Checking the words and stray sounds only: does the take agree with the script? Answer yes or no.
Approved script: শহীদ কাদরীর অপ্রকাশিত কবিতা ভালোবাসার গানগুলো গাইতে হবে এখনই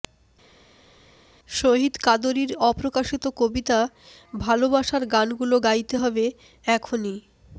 yes